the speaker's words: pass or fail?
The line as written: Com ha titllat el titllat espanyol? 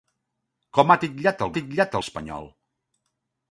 pass